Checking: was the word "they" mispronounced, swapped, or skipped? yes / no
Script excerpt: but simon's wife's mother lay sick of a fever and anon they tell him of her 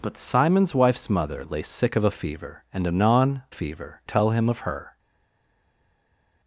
yes